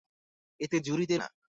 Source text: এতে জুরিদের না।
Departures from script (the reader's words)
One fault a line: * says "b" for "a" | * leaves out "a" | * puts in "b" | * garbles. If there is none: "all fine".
all fine